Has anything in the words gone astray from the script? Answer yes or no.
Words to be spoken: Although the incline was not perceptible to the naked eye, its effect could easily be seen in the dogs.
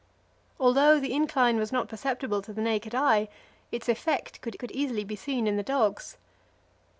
yes